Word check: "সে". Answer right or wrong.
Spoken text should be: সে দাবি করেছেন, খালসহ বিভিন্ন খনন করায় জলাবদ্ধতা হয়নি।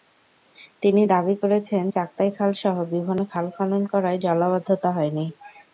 wrong